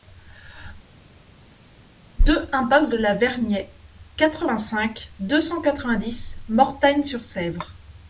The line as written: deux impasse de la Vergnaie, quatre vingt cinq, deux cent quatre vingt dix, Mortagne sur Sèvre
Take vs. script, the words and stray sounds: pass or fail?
pass